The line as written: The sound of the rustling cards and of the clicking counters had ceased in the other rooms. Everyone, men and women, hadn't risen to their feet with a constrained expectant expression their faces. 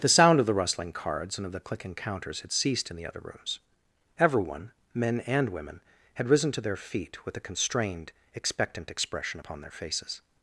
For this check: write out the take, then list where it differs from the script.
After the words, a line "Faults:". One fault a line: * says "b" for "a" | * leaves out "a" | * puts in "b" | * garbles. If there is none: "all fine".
The sound of the rustling cards and of the clicking counters had ceased in the other rooms. Everyone, men and women, had risen to their feet with a constrained expectant expression upon their faces.
Faults:
* says "had" for "hadn't"
* puts in "upon"